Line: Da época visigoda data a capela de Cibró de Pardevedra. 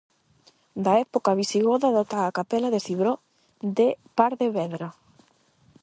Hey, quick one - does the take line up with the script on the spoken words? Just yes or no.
yes